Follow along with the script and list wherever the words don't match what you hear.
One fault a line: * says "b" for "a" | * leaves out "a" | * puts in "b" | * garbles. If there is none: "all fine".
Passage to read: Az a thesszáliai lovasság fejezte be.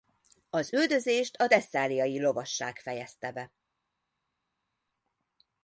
* puts in "üldözést"